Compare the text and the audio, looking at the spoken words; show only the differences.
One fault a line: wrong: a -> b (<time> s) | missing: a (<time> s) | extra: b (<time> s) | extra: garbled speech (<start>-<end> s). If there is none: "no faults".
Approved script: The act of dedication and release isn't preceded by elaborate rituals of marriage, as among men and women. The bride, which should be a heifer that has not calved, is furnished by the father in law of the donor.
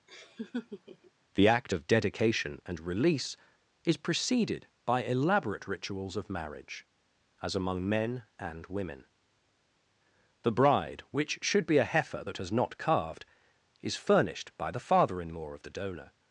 wrong: isn't -> is (3.8 s)